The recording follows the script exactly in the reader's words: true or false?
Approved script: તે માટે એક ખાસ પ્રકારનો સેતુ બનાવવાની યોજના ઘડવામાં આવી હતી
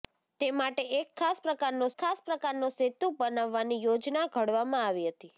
false